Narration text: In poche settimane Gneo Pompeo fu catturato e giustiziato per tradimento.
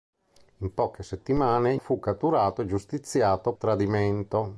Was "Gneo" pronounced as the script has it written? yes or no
no